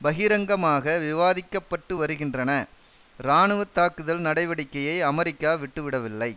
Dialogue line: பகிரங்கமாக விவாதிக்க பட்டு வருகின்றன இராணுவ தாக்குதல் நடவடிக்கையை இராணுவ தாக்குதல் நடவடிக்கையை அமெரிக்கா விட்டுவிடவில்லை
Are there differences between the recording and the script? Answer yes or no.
yes